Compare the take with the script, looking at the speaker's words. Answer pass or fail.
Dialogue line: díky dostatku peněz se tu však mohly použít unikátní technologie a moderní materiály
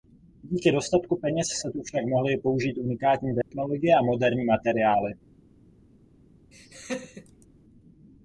pass